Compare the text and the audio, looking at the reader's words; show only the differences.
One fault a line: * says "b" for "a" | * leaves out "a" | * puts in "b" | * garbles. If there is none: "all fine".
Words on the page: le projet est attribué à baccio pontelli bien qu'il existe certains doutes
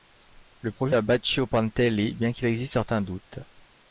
* leaves out "est attribué"